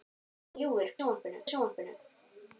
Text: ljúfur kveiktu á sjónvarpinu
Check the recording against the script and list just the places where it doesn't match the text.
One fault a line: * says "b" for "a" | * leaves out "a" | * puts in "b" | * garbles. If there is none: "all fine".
* says "sjónvarpinu" for "kveiktu"